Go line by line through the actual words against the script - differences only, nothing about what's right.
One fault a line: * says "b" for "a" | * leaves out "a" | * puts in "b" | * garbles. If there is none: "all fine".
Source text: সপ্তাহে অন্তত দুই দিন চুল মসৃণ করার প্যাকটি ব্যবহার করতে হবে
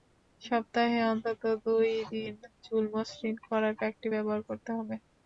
all fine